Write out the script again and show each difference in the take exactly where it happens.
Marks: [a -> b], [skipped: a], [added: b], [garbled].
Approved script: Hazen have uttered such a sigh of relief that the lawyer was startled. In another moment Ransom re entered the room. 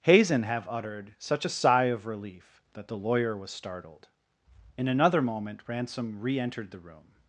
Hazen have uttered such a sigh of relief that the lawyer was startled. In another moment Ransom re entered the room.